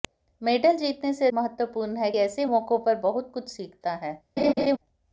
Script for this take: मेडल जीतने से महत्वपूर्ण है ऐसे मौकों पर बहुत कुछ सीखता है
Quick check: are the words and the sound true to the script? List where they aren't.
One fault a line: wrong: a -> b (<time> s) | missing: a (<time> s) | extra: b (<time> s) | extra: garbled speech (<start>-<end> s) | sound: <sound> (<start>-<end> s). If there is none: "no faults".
sound: laugh (4.4-4.8 s)